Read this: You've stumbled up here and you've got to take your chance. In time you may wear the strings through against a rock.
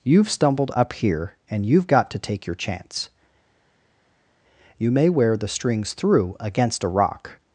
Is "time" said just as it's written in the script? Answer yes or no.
no